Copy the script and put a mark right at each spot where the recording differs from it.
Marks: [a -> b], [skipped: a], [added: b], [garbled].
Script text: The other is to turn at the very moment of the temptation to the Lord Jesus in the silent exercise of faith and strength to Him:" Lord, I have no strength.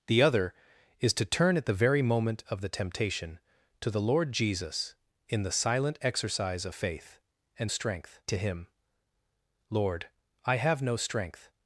The other is to turn at the very moment of the temptation to the Lord Jesus in the silent exercise of faith and strength to Him:" Lord, I have no strength.